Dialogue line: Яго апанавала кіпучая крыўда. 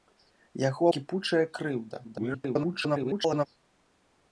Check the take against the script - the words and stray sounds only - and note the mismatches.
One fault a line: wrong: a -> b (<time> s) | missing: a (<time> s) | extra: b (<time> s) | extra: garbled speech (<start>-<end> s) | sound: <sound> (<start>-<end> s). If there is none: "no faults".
missing: апанавала (0.8 s)
extra: garbled speech (2.0-3.5 s)